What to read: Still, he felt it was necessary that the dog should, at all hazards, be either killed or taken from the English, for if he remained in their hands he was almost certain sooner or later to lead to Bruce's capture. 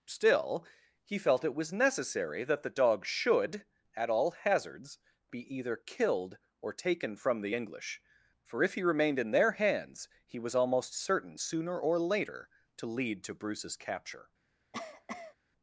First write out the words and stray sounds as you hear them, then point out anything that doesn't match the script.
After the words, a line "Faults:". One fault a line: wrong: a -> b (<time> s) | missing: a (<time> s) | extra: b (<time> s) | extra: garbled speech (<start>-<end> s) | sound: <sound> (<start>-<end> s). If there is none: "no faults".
Still, he felt it was necessary that the dog should, at all hazards, be either killed or taken from the English, for if he remained in their hands he was almost certain sooner or later to lead to Bruce's capture.
Faults:
sound: cough (14.7-15.4 s)